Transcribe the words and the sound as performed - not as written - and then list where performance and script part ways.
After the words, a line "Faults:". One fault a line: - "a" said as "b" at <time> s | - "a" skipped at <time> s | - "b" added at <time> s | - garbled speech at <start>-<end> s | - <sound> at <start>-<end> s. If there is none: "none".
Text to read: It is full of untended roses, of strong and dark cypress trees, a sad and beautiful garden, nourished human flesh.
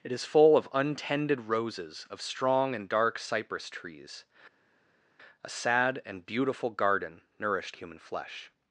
It is full of untended roses, of strong and dark cypress trees, a sad and beautiful garden, nourished human flesh.
Faults:
none